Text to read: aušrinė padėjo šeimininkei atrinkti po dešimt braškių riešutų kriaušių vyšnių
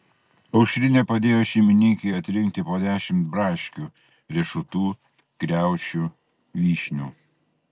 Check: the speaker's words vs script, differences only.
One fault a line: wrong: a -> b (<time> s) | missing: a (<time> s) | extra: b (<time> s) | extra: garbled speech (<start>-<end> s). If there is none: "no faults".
no faults